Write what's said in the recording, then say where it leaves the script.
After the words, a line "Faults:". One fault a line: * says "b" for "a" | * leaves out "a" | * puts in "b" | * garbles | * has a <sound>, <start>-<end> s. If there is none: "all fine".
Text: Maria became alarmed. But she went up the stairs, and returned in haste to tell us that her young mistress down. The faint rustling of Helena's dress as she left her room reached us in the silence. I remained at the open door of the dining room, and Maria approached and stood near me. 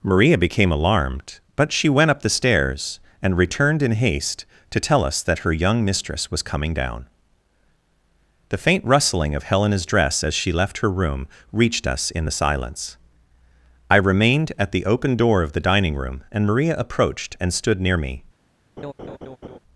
Maria became alarmed. But she went up the stairs, and returned in haste to tell us that her young mistress was coming down. The faint rustling of Helena's dress as she left her room reached us in the silence. I remained at the open door of the dining room, and Maria approached and stood near me.
Faults:
* puts in "was coming"
* has a laugh, 18.8-19.6 s